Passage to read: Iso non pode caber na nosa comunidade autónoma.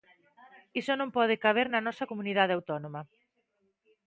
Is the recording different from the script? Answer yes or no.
no